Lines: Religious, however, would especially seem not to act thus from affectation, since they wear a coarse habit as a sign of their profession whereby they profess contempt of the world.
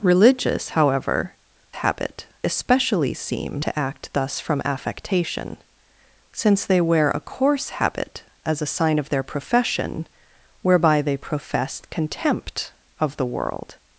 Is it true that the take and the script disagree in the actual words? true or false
true